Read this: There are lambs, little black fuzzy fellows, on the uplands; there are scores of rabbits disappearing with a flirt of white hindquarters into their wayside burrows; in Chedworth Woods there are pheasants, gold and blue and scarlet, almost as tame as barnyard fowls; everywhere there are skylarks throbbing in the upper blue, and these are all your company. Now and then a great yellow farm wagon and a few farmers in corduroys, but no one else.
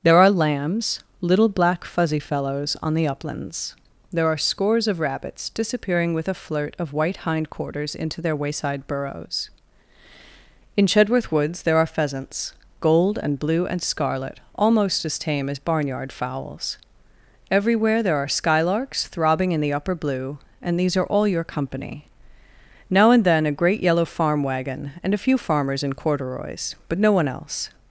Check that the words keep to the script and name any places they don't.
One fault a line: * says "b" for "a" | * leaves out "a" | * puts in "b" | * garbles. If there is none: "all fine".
all fine